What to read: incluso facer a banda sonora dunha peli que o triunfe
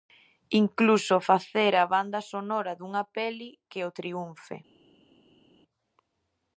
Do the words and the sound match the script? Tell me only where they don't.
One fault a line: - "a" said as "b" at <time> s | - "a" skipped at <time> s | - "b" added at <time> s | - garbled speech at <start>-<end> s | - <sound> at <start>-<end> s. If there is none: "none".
none